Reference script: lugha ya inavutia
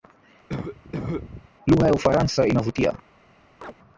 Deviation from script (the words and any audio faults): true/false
true